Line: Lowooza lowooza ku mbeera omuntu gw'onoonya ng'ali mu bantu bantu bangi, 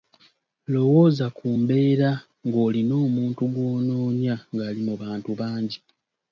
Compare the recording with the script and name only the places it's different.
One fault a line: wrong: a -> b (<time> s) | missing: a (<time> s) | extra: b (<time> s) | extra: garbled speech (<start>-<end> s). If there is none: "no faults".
missing: lowooza (1.2 s)
extra: ng'olina (2.5 s)
missing: bantu (5.3 s)